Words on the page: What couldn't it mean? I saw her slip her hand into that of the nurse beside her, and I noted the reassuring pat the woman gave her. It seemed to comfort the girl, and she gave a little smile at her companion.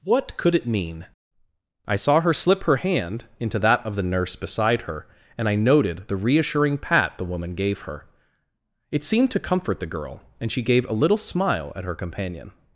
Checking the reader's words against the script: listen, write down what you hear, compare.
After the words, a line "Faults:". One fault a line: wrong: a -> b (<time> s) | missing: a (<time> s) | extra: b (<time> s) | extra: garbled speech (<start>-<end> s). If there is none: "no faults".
What could it mean? I saw her slip her hand into that of the nurse beside her, and I noted the reassuring pat the woman gave her. It seemed to comfort the girl, and she gave a little smile at her companion.
Faults:
wrong: couldn't -> could (0.3 s)